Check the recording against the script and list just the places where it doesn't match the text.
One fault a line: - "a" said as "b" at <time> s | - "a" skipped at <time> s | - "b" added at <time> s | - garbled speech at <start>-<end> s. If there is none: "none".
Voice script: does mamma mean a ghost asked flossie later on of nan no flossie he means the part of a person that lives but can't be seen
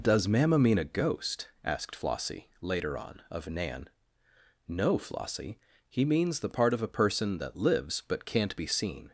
none